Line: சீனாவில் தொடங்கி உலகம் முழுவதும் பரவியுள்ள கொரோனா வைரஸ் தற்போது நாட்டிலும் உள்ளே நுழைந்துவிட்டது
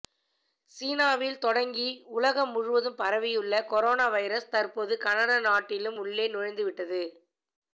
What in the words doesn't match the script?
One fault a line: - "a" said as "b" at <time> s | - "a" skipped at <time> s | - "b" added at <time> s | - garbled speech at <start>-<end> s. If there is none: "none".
- "கனடா" added at 5.0 s